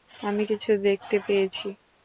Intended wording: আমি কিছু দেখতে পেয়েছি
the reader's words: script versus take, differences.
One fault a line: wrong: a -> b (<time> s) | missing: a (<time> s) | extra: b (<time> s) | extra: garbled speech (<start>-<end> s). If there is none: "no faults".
no faults